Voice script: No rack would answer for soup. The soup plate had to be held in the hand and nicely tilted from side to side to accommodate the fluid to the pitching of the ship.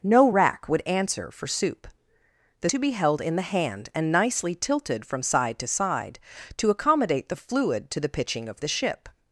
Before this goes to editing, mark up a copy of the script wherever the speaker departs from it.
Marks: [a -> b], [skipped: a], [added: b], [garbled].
No rack would answer for soup. The [skipped: soup plate had] to be held in the hand and nicely tilted from side to side to accommodate the fluid to the pitching of the ship.